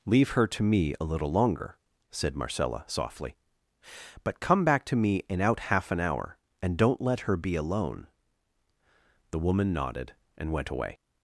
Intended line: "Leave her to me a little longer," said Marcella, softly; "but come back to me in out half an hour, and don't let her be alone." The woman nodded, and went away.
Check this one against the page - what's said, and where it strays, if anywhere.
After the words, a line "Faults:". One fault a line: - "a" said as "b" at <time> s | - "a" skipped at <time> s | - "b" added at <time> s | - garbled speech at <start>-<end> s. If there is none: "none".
"Leave her to me a little longer," said Marcella, softly; "but come back to me in out half an hour, and don't let her be alone." The woman nodded, and went away.
Faults:
none